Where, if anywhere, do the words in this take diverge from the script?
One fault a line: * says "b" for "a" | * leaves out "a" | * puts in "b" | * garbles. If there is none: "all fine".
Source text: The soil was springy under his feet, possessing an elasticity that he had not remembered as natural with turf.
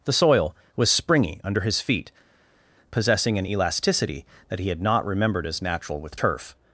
all fine